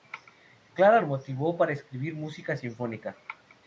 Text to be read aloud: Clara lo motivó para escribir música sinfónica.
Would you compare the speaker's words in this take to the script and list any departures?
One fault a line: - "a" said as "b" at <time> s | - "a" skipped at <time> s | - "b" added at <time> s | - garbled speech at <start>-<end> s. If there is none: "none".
none